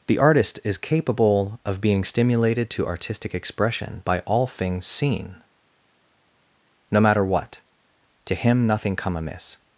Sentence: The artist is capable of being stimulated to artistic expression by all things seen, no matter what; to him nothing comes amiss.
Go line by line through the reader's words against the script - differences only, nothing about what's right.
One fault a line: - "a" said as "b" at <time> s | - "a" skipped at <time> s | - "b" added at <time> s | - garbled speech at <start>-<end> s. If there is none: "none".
- "comes" said as "come" at 9.0 s